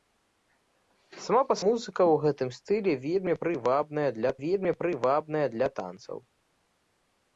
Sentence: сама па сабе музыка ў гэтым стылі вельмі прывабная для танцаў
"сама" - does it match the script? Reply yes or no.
yes